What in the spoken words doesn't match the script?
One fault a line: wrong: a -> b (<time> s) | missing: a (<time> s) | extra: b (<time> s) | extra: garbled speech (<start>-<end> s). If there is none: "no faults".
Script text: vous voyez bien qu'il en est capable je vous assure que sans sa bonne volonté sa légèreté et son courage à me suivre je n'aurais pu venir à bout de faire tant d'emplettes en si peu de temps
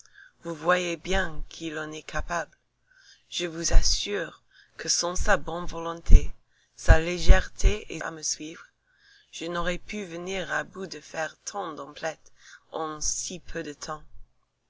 missing: son courage (8.0 s)